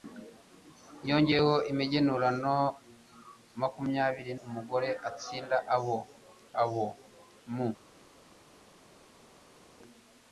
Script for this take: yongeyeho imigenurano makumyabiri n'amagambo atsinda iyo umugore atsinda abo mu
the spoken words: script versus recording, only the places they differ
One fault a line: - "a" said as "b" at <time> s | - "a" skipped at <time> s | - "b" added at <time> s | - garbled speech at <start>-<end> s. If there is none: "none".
- "n'amagambo" said as "umugore" at 4.5 s
- "iyo umugore atsinda" said as "abo" at 5.8 s